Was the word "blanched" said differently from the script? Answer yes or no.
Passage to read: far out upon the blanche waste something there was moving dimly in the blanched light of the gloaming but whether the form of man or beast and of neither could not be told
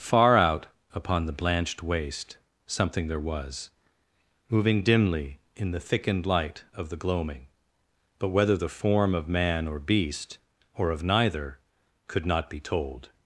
yes